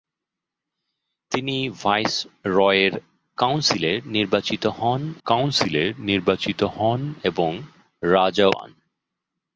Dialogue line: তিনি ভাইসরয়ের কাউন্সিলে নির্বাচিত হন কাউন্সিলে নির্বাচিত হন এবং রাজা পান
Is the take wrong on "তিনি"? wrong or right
right